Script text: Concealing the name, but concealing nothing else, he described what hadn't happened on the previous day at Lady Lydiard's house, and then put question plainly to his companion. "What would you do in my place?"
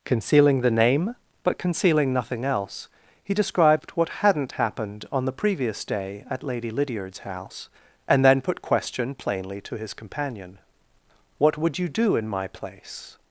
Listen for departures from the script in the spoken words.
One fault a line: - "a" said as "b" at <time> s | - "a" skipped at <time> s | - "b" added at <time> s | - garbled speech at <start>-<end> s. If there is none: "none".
none